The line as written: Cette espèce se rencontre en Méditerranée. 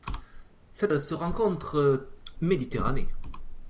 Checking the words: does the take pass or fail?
fail